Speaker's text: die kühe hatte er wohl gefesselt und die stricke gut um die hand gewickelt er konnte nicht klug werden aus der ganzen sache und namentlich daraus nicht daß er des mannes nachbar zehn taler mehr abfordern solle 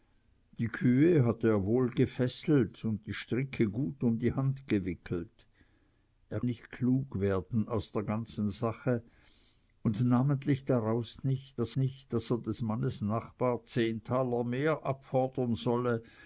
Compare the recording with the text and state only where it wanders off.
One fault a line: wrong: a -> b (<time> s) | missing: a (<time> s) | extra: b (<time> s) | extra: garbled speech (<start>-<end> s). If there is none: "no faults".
missing: konnte (6.4 s)
extra: nicht daß (11.7 s)